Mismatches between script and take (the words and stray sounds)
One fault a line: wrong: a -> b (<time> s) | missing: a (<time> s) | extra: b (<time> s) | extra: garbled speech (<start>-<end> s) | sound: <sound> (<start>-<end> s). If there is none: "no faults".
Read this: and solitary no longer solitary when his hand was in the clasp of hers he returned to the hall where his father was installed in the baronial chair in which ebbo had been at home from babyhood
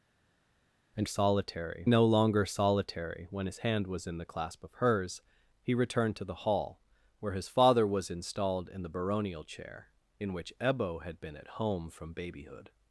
no faults